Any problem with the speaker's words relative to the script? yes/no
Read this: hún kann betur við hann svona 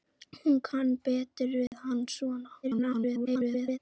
yes